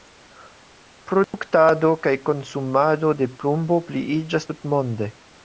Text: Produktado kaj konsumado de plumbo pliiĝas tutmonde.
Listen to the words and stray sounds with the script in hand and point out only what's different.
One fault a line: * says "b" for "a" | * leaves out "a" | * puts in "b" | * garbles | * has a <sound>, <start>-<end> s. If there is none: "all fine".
* has a dropout, 1.2-1.3 s